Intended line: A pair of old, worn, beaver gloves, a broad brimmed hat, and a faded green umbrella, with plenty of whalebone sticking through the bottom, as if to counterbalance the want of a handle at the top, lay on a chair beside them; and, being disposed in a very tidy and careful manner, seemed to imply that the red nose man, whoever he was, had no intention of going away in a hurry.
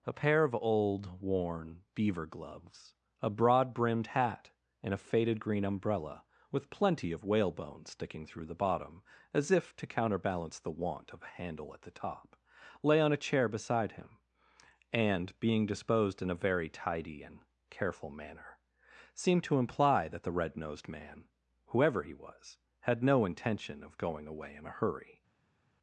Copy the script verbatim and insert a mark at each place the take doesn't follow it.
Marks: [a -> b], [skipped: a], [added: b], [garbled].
A pair of old, worn, beaver gloves, a broad brimmed hat, and a faded green umbrella, with plenty of whalebone sticking through the bottom, as if to counterbalance the want of a handle at the top, lay on a chair beside [them; -> him] and, being disposed in a very tidy and careful manner, seemed to imply that the red [nose -> nosed] man, whoever he was, had no intention of going away in a hurry.